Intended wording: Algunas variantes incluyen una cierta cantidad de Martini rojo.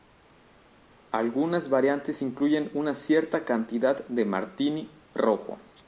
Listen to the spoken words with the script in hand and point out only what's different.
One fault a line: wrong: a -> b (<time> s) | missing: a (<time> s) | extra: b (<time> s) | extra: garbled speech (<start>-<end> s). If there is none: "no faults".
no faults